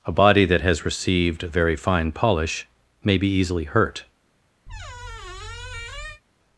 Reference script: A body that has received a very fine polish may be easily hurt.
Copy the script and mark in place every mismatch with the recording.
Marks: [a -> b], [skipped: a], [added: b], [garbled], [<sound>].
A body that has received [skipped: a] very fine polish may be easily hurt. [squeak]